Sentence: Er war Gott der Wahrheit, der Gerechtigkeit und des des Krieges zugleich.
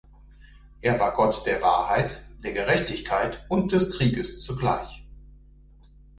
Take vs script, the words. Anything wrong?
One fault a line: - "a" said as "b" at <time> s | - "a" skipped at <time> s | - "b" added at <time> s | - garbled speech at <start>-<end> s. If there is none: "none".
- "des" skipped at 4.0 s